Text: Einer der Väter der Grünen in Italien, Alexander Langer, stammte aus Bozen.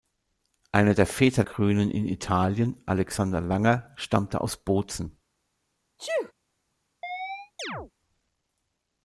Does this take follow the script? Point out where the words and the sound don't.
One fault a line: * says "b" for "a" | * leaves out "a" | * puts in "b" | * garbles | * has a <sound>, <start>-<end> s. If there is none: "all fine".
* leaves out "der"
* has a sneeze, 6.0-6.3 s
* has a chirp, 7.0-7.9 s